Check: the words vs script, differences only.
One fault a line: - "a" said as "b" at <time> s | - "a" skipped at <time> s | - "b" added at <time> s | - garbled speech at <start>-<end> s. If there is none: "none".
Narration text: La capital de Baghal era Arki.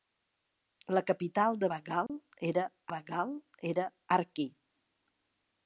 - "Baghal era" added at 2.9 s